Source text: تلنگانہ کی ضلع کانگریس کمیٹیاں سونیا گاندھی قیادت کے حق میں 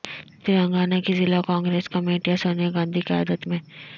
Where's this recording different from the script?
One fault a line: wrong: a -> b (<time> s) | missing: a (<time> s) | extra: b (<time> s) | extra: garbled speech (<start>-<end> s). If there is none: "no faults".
missing: کے حق (3.5 s)